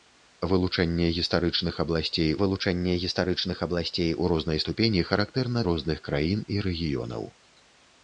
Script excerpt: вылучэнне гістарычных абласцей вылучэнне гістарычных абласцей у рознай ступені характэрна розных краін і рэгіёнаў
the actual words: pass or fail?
pass